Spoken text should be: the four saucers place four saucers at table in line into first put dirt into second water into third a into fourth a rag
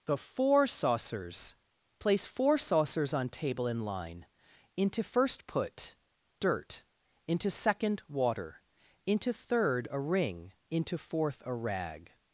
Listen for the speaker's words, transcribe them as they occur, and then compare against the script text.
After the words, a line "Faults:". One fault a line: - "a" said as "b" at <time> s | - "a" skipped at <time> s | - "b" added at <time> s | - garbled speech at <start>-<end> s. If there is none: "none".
the four saucers place four saucers on table in line into first put dirt into second water into third a ring into fourth a rag
Faults:
- "at" said as "on" at 3.1 s
- "ring" added at 10.0 s